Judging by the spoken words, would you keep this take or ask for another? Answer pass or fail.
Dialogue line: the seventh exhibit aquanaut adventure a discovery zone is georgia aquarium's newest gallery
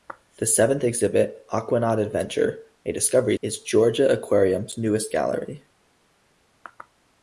fail